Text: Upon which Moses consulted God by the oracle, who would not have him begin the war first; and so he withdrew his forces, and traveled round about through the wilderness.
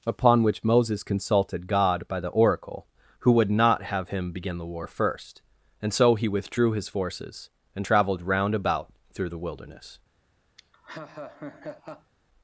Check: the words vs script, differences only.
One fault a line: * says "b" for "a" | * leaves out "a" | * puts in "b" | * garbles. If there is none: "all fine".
all fine